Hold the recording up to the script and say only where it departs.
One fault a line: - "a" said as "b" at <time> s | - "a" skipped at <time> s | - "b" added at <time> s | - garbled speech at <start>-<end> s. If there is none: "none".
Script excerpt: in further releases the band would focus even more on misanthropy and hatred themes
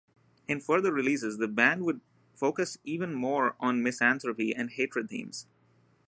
none